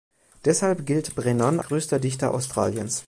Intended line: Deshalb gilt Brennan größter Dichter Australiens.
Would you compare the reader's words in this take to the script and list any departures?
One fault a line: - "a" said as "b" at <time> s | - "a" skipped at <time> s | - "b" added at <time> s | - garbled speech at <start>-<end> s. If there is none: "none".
none